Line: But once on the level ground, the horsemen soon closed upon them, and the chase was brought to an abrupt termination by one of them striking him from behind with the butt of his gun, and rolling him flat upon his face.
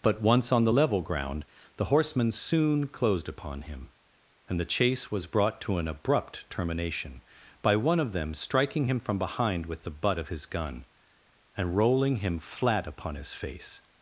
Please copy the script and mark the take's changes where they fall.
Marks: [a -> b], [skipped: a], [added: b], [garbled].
But once on the level ground, the horsemen soon closed upon [them, -> him] and the chase was brought to an abrupt termination by one of them striking him from behind with the butt of his gun, and rolling him flat upon his face.